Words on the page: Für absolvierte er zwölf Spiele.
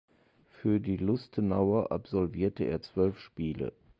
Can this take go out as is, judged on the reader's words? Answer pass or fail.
fail